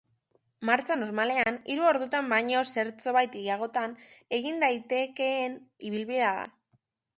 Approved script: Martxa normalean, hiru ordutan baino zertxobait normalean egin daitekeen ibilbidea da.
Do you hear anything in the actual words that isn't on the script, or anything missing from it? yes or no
yes